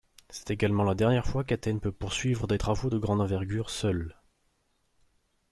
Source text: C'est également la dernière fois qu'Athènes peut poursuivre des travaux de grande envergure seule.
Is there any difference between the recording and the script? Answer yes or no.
no